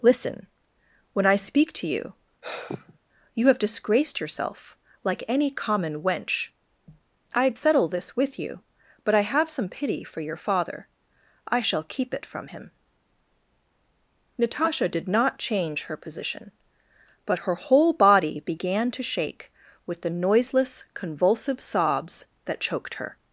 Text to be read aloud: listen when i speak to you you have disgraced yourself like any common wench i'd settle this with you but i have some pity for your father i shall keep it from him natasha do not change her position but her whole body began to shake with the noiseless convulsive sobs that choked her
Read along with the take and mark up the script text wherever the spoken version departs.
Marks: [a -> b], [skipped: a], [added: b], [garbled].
listen when i speak to you you have disgraced yourself like any common wench i'd settle this with you but i have some pity for your father i shall keep it from him natasha [do -> did] not change her position but her whole body began to shake with the noiseless convulsive sobs that choked her